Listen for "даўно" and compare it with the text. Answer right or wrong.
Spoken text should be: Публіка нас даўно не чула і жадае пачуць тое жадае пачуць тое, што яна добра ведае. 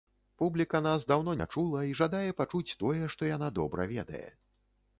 right